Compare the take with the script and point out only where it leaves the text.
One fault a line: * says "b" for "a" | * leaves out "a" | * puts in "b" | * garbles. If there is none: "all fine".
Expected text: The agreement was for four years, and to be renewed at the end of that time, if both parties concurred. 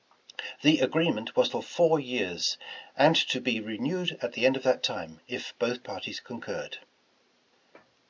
all fine